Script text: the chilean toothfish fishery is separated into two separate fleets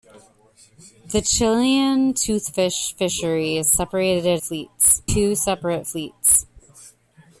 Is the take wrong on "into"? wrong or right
wrong